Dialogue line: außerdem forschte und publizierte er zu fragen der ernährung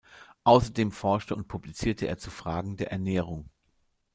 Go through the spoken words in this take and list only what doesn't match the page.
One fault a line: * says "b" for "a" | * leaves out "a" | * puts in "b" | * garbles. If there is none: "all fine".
all fine